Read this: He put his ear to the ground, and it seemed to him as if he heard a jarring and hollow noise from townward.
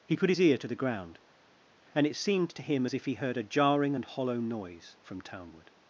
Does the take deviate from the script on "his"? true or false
false